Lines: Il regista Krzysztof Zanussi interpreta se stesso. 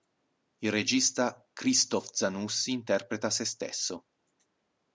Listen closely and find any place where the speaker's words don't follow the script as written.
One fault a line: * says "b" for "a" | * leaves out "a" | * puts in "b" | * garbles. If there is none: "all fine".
all fine